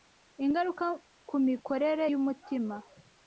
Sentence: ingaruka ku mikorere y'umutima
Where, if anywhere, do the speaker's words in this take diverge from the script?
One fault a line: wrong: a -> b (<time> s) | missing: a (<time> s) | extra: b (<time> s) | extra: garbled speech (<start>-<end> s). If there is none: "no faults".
no faults